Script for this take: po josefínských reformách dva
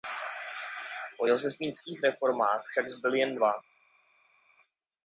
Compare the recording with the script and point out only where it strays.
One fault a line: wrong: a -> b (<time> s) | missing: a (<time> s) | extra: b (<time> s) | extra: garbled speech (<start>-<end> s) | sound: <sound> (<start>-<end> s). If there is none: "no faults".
extra: však zbyly jen (2.7 s)